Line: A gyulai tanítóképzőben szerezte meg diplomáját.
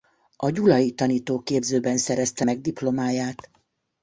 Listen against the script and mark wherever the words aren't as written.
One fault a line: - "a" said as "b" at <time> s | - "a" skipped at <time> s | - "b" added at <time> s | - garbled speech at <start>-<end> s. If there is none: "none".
none